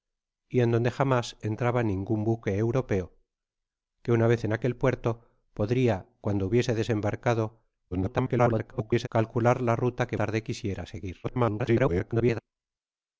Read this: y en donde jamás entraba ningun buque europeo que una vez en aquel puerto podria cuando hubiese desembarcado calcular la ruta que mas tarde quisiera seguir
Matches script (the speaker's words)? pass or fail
fail